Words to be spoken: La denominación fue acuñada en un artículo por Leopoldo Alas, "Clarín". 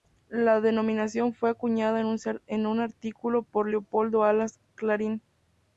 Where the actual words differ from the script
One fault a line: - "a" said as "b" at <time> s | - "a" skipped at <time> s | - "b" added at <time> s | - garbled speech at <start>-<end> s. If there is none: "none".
none